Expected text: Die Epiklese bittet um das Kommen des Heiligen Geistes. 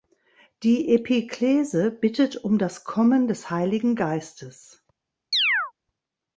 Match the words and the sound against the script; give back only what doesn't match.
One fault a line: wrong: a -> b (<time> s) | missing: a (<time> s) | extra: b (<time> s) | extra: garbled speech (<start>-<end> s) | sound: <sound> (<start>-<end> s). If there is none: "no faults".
sound: chirp (5.3-5.7 s)